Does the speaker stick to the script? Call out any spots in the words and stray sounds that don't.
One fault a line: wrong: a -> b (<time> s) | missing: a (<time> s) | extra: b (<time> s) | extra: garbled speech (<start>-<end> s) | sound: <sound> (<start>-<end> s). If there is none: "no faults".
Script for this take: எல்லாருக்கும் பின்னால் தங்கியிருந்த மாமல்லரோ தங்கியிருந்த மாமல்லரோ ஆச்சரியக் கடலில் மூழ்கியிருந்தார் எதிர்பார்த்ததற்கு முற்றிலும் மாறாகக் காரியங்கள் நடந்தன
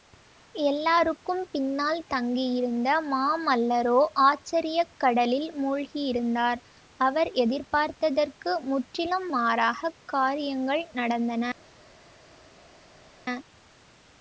missing: தங்கியிருந்த மாமல்லரோ (4.0 s)
extra: அவர் (7.0 s)